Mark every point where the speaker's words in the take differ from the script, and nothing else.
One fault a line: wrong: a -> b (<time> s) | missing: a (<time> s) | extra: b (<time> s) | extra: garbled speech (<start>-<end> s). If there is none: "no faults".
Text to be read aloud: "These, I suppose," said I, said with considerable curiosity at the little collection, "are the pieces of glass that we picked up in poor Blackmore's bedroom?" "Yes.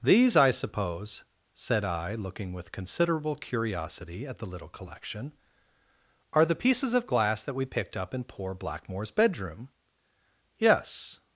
wrong: said -> looking (2.1 s)